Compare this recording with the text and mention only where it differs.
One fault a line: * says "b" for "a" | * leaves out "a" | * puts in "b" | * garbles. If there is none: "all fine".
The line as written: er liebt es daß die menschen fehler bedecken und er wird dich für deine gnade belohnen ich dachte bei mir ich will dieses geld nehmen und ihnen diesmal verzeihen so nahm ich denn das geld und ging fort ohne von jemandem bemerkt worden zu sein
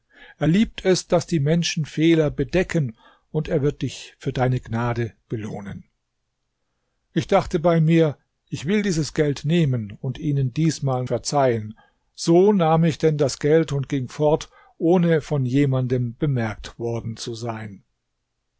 all fine